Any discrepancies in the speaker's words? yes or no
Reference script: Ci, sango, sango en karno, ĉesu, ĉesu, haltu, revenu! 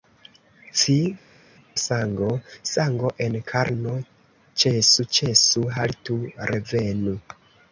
no